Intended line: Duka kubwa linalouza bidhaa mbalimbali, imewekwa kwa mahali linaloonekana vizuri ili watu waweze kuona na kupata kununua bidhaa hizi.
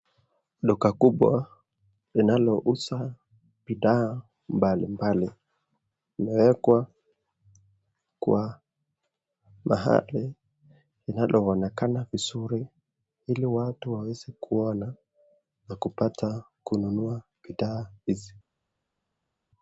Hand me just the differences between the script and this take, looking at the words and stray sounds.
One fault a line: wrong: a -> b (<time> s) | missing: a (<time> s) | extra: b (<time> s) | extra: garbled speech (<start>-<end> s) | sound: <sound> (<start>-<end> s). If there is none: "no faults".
no faults